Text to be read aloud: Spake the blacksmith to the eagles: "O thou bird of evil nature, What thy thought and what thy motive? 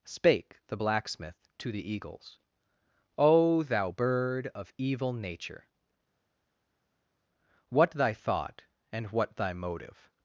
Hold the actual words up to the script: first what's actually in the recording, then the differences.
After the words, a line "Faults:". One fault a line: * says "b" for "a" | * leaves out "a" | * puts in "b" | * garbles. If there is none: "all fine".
Spake the blacksmith to the eagles: "O thou bird of evil nature, What thy thought and what thy motive?
Faults:
all fine